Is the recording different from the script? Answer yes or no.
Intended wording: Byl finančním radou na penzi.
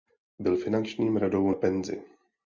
no